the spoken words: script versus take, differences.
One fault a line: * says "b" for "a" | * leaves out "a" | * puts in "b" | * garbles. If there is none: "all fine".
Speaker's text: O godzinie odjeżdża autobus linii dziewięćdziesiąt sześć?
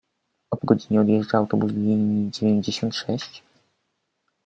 all fine